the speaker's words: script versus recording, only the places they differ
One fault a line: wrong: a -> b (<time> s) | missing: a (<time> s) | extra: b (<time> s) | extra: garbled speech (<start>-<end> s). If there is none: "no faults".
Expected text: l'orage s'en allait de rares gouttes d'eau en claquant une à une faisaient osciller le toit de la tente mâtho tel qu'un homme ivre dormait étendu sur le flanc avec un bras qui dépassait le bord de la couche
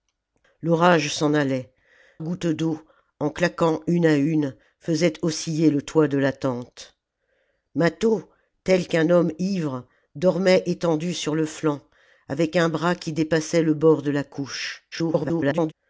missing: de rares (1.7 s)
extra: garbled speech (14.9-15.7 s)